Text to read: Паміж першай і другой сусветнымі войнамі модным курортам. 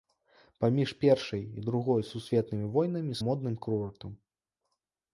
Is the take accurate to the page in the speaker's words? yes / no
yes